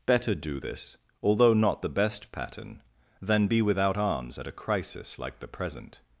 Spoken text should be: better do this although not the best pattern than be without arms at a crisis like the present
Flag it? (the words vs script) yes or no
no